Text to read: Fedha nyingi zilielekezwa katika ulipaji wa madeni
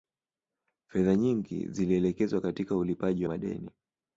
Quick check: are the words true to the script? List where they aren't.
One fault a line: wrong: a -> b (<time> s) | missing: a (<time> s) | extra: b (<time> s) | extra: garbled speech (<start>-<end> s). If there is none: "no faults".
no faults